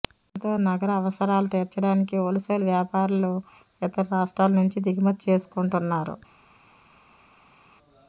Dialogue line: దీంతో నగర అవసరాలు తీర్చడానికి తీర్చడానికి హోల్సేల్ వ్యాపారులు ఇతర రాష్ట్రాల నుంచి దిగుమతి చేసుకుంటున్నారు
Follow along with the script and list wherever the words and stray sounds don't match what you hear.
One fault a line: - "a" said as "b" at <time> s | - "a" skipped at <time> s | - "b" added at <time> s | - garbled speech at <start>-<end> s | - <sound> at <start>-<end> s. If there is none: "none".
- "తీర్చడానికి" skipped at 2.1 s